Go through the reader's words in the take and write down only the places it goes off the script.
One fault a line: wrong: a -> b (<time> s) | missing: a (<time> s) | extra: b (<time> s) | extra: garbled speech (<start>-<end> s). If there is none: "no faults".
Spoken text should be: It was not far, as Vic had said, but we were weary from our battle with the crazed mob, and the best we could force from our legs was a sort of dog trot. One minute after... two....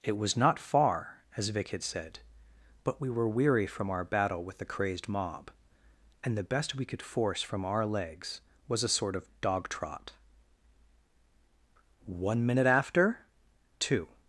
no faults